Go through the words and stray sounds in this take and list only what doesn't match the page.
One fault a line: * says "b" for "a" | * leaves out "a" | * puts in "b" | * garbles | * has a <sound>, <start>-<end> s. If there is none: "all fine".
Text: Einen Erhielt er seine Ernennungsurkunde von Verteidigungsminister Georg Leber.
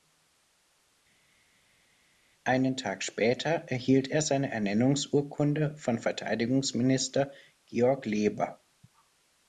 * puts in "Tag später"